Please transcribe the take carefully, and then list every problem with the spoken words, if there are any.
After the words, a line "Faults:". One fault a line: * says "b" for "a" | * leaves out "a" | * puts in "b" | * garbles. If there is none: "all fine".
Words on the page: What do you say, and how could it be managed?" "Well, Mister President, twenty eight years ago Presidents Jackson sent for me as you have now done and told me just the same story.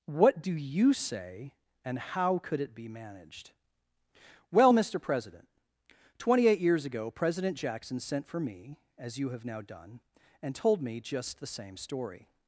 What do you say, and how could it be managed?" "Well, Mister President, twenty eight years ago President Jackson sent for me as you have now done and told me just the same story.
Faults:
* says "President" for "Presidents"